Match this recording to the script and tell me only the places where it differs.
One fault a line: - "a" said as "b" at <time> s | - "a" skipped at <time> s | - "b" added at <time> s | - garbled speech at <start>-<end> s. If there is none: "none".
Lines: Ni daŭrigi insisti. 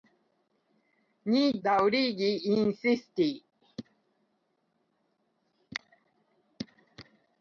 none